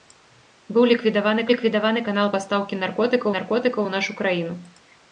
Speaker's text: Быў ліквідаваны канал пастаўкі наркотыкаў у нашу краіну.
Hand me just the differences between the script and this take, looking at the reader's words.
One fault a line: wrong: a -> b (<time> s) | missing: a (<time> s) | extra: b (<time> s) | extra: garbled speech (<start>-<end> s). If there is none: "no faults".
extra: ліквідаваны (1.5 s)
extra: наркотыкаў (3.4 s)